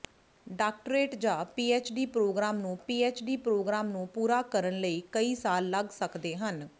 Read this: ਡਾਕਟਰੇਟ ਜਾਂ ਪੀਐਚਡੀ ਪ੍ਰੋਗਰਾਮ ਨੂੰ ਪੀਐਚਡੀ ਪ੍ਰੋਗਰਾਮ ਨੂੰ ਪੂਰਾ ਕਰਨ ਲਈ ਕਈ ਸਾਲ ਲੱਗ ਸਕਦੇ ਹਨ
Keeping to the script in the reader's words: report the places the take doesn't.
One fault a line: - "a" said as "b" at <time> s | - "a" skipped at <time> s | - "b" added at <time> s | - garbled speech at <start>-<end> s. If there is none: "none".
none